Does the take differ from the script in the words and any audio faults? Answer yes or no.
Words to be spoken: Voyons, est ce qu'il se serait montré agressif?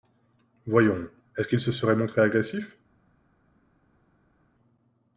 no